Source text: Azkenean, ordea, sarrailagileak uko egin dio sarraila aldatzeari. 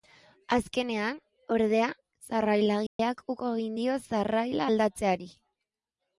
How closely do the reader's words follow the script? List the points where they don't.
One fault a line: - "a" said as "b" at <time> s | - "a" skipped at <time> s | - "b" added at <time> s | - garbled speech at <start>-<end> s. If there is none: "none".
none